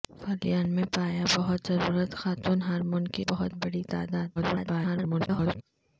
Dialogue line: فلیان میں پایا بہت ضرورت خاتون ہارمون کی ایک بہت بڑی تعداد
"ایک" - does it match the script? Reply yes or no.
no